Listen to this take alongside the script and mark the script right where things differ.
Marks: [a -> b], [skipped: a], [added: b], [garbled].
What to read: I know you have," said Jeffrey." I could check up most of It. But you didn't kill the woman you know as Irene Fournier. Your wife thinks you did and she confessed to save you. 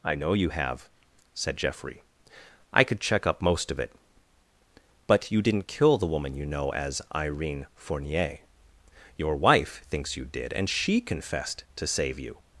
I know you have," said Jeffrey." I could check up most of It. But you didn't kill the woman you know as Irene Fournier. Your wife thinks you did and she confessed to save you.